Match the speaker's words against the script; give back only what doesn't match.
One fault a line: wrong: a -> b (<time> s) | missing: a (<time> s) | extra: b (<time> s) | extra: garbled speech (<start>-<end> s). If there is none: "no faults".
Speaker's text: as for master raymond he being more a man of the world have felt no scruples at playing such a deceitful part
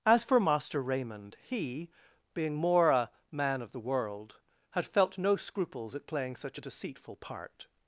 wrong: have -> had (4.7 s)